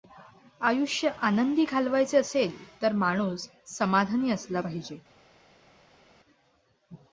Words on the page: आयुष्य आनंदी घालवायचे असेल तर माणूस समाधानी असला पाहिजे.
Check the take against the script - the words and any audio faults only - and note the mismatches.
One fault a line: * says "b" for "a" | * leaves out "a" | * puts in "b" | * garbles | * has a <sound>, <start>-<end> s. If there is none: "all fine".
all fine